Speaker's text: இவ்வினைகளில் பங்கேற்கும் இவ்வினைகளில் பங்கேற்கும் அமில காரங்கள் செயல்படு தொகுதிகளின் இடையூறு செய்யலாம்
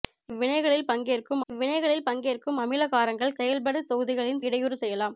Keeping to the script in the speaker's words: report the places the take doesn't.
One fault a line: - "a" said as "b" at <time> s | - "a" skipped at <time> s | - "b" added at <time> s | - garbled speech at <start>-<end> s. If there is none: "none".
none